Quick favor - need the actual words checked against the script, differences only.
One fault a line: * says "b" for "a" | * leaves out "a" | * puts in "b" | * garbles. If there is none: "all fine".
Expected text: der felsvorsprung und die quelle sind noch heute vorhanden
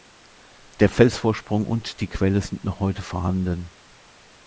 all fine